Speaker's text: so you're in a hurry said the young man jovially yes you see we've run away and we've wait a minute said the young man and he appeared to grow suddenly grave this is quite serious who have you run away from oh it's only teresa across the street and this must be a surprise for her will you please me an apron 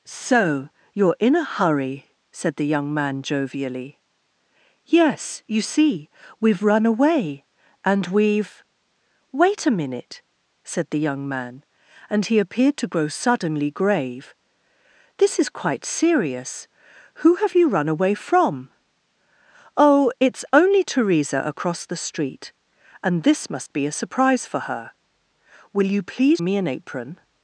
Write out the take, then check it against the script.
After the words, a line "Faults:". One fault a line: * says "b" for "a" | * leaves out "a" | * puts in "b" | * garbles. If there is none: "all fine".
so you're in a hurry said the young man jovially yes you see we've run away and we've wait a minute said the young man and he appeared to grow suddenly grave this is quite serious who have you run away from oh it's only teresa across the street and this must be a surprise for her will you please me an apron
Faults:
all fine